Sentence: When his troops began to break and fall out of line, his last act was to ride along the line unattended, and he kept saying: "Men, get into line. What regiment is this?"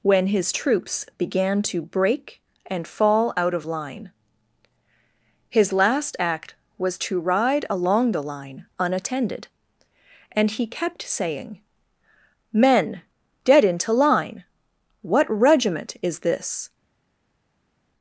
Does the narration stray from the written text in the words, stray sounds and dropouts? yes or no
yes